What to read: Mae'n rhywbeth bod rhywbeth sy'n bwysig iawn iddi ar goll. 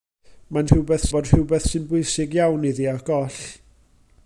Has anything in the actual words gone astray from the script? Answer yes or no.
no